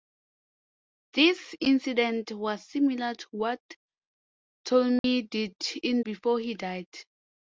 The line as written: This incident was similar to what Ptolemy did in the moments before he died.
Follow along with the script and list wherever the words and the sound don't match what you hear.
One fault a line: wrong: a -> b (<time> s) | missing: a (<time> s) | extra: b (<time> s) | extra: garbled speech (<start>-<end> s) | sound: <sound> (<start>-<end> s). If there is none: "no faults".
sound: dropout (5.0-5.0 s)
missing: the moments (6.0 s)